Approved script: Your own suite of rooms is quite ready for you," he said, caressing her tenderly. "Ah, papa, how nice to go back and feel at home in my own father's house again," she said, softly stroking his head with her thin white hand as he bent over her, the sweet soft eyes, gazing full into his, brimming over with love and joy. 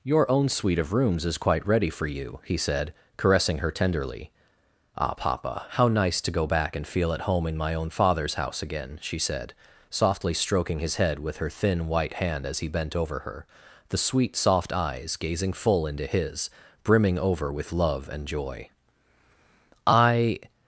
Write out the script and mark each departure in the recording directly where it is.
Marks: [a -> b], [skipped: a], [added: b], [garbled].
Your own suite of rooms is quite ready for you," he said, caressing her tenderly. "Ah, papa, how nice to go back and feel at home in my own father's house again," she said, softly stroking his head with her thin white hand as he bent over her, the sweet soft eyes, gazing full into his, brimming over with love and joy. [added: I]